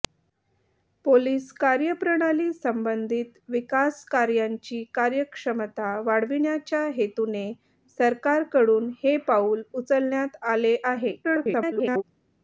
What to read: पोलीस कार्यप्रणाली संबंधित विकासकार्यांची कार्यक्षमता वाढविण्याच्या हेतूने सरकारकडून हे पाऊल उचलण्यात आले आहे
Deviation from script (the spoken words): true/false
true